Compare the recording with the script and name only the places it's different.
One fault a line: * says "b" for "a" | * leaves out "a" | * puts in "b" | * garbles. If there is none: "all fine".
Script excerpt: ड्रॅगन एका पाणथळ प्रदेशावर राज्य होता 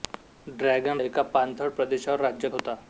all fine